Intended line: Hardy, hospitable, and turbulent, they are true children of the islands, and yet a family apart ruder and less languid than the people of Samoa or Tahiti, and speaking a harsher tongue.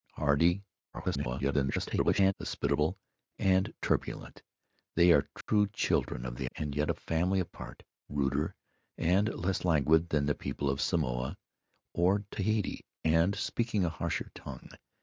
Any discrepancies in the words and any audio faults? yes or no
yes